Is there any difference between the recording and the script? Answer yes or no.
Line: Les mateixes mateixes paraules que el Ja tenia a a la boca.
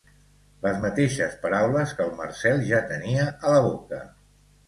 yes